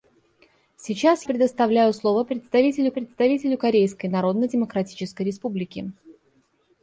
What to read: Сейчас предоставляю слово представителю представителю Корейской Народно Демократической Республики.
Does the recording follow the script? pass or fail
pass